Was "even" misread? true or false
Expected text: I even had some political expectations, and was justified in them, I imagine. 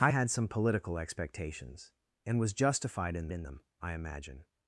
true